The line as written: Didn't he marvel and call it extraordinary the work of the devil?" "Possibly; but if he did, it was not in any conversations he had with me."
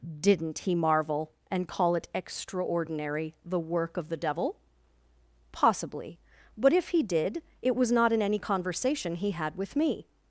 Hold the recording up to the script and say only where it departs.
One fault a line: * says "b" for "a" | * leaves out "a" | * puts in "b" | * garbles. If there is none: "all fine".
* says "conversation" for "conversations"